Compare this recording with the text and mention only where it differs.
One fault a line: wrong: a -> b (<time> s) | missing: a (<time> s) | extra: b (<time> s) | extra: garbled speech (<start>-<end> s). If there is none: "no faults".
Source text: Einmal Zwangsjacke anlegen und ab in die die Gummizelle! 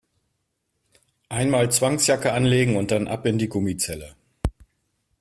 extra: dann (2.9 s)
missing: die (3.5 s)